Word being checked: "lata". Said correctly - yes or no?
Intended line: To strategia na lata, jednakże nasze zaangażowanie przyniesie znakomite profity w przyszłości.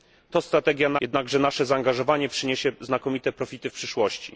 no